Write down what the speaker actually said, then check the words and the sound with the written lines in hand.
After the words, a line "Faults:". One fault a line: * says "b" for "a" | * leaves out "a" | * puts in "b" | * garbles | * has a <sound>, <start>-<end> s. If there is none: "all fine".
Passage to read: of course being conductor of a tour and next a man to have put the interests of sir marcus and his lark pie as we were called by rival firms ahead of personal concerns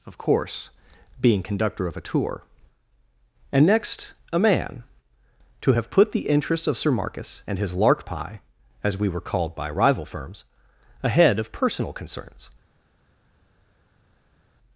of course being conductor of a tour and next a man to have put the interests of sir marcus and his lark pie as we were called by rival firms ahead of personal concerns
Faults:
all fine